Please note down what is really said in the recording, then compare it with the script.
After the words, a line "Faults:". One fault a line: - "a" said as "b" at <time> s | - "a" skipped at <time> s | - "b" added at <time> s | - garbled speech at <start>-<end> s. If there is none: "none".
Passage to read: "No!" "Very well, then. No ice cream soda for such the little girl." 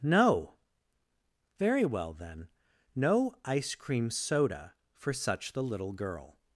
"No!" "Very well, then. No ice cream soda for such the little girl."
Faults:
none